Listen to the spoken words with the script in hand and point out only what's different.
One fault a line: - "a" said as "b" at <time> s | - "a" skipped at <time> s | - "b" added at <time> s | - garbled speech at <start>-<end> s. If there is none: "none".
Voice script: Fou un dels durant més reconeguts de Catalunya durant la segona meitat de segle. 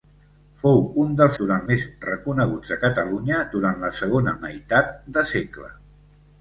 none